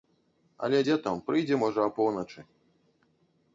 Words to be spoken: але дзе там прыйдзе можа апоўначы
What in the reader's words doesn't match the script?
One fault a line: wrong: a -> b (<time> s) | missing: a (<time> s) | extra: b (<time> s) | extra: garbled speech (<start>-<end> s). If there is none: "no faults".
no faults